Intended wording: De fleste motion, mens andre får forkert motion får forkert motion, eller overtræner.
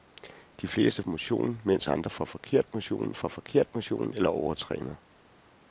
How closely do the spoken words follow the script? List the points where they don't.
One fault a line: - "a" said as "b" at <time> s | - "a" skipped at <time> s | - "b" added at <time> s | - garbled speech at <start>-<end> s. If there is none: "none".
none